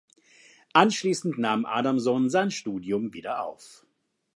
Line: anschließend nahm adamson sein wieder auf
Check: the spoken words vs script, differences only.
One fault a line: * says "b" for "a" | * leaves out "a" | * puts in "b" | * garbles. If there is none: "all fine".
* puts in "studium"